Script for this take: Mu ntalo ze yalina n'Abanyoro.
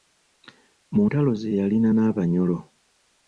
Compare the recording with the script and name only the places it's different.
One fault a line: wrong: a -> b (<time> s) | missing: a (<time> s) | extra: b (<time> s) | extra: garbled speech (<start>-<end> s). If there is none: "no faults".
no faults